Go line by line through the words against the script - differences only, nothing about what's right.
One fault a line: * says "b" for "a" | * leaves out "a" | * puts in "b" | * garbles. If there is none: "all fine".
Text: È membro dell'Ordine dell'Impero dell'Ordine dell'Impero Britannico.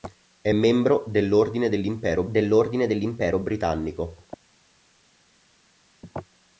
all fine